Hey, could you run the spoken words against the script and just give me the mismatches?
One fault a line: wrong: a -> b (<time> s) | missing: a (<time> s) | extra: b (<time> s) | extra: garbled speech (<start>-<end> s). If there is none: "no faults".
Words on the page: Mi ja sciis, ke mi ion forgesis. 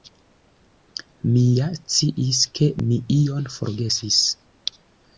no faults